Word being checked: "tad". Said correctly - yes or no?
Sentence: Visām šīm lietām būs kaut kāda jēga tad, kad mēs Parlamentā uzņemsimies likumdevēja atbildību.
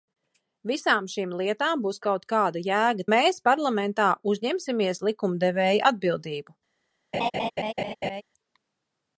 no